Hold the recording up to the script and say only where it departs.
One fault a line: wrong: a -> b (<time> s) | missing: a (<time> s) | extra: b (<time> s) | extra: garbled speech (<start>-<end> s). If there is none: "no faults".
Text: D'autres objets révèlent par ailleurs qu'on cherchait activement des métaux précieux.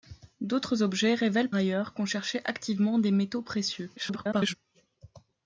missing: par (1.5 s)
extra: garbled speech (4.0-4.5 s)